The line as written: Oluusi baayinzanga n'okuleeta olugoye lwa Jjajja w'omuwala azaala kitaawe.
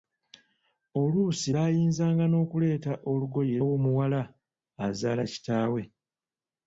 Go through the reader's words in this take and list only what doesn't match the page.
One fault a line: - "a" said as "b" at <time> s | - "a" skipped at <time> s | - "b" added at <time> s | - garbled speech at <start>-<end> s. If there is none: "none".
- "lwa Jjajja" skipped at 3.6 s